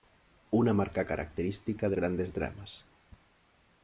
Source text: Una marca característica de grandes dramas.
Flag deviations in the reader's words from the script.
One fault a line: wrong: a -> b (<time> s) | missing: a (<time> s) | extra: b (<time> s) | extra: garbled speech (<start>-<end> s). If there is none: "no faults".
no faults